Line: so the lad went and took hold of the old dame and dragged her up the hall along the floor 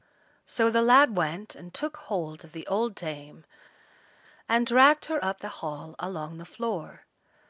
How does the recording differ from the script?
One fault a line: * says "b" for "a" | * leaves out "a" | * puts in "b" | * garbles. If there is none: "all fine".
all fine